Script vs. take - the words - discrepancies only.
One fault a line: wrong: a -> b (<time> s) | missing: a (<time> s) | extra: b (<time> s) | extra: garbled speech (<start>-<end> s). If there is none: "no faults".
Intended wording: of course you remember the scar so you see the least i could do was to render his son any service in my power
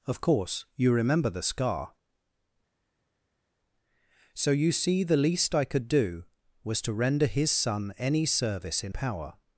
missing: my (8.9 s)